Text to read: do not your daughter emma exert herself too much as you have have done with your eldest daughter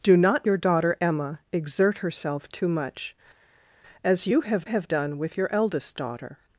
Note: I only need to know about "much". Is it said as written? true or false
true